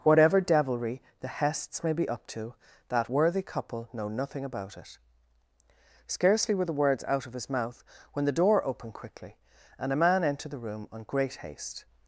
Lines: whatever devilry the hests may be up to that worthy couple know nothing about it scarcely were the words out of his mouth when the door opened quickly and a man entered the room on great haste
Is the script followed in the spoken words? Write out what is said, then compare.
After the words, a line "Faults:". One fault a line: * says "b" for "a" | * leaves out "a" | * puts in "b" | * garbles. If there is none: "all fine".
whatever devilry the hests may be up to that worthy couple know nothing about it scarcely were the words out of his mouth when the door opened quickly and a man entered the room on great haste
Faults:
all fine